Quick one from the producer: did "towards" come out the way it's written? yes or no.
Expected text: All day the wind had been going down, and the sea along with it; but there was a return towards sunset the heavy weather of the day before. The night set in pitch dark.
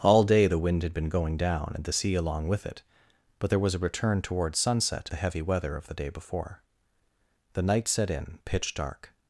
yes